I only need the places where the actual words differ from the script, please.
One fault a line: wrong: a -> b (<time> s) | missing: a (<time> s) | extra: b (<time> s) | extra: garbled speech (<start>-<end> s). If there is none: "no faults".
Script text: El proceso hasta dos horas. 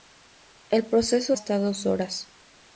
no faults